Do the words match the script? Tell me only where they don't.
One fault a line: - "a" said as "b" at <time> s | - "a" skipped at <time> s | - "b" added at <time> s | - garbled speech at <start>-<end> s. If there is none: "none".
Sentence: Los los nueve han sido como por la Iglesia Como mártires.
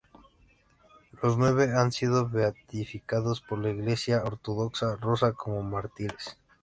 - "los" skipped at 1.4 s
- "como" said as "beatificados" at 2.3 s
- "Ortodoxa Rusa" added at 4.2 s